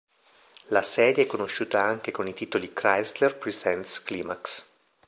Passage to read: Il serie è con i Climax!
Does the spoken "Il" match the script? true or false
false